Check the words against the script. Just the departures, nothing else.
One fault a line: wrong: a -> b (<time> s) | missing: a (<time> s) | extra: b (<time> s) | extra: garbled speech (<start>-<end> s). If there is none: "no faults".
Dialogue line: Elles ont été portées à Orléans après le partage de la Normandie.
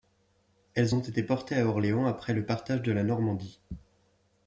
no faults